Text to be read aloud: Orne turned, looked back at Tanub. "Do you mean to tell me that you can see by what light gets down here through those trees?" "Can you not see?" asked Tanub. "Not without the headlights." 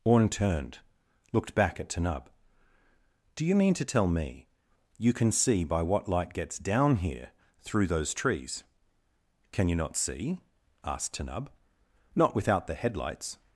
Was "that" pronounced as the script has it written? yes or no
no